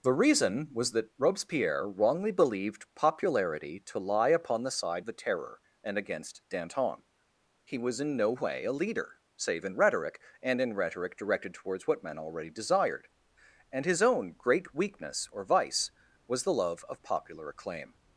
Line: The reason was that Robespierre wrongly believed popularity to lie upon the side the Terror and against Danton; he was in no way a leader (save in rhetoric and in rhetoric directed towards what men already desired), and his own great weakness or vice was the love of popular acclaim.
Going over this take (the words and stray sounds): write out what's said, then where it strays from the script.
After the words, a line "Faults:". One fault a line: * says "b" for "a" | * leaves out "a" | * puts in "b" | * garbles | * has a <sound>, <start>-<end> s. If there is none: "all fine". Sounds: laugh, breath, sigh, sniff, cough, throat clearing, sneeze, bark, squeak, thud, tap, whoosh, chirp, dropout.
The reason was that Robespierre wrongly believed popularity to lie upon the side the Terror and against Danton; he was in no way a leader (save in rhetoric and in rhetoric directed towards what men already desired), and his own great weakness or vice was the love of popular acclaim.
Faults:
all fine